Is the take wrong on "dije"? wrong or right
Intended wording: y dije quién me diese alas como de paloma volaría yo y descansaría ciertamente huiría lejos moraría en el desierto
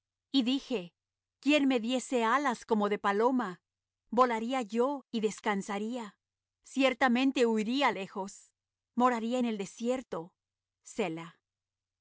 right